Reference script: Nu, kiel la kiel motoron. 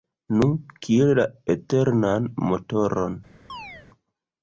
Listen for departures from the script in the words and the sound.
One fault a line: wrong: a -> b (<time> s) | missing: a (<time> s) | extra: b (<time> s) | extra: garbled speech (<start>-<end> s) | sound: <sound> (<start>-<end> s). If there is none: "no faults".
wrong: kiel -> eternan (1.5 s)
sound: chirp (3.5-3.9 s)